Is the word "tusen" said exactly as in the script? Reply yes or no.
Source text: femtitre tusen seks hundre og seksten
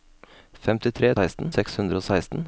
no